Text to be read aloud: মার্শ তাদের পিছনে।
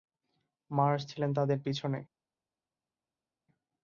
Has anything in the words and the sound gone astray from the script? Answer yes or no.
yes